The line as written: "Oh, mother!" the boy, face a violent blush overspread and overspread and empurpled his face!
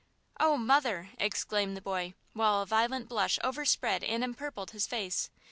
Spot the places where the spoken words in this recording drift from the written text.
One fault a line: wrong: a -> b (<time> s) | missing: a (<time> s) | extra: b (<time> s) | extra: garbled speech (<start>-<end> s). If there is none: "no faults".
extra: exclaimed (1.2 s)
wrong: face -> while (2.3 s)
missing: overspread and (4.2 s)